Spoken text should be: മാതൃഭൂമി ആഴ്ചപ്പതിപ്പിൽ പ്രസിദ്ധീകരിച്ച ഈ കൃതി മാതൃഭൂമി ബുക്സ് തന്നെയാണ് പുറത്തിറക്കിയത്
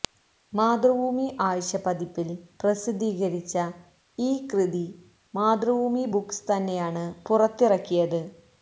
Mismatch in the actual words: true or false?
false